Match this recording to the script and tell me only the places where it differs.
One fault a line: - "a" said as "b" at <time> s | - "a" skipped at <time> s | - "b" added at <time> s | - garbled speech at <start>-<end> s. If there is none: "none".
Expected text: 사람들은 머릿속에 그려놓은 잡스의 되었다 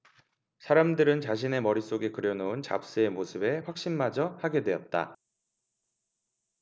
- "자신의" added at 1.2 s
- "모습에 확신마저 하게" added at 3.1 s